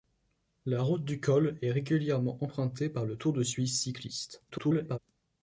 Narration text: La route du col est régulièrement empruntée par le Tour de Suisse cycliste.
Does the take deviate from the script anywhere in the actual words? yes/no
yes